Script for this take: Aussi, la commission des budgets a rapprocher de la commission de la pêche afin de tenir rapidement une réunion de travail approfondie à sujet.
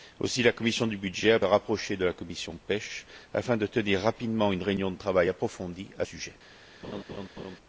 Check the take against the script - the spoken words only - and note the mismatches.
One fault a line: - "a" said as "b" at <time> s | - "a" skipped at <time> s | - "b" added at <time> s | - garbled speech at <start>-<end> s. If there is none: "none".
none